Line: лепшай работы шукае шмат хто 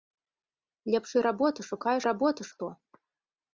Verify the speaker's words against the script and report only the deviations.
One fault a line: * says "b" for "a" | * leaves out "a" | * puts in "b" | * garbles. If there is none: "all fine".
* says "работы" for "шмат"